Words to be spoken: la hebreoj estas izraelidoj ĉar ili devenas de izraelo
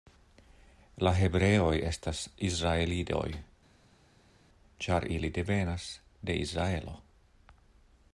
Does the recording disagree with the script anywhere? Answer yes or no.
no